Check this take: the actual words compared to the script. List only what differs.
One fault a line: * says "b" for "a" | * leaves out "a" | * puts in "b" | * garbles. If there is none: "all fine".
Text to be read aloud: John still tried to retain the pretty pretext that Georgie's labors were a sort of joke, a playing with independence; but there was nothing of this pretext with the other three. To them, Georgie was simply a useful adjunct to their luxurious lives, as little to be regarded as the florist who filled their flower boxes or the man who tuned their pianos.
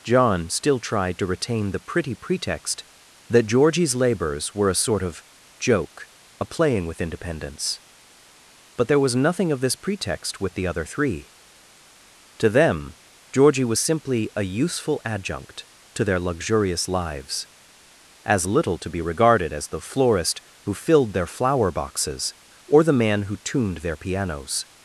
all fine